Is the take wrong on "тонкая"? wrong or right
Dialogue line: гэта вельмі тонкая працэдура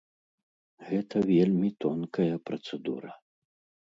right